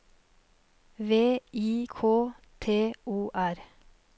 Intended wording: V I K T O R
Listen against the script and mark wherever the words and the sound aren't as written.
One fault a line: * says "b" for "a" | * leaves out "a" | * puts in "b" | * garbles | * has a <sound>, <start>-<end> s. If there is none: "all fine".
all fine